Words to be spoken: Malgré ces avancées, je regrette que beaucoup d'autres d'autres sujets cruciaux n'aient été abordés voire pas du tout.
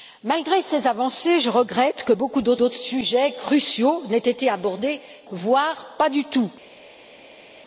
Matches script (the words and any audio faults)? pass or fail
pass